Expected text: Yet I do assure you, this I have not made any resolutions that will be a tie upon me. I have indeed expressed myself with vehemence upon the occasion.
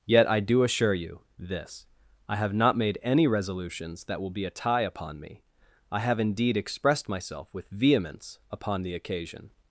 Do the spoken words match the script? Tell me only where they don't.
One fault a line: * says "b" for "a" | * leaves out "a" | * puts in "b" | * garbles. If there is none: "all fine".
all fine